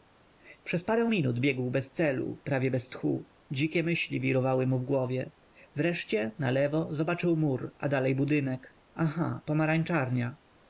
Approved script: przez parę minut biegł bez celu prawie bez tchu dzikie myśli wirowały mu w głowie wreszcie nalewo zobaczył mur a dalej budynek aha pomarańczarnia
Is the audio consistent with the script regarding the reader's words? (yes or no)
yes